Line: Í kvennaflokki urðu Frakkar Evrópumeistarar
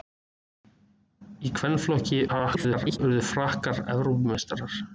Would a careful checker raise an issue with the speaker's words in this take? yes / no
yes